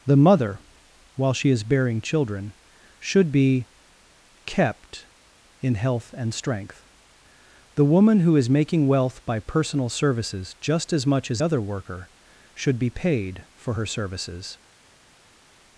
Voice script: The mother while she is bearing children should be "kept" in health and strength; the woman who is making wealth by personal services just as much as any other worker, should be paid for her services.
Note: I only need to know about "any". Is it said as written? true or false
false